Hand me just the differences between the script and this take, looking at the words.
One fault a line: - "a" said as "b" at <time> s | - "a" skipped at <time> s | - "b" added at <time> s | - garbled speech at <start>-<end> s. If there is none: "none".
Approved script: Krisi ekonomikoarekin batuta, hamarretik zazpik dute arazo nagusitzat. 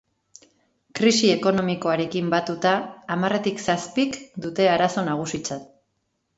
none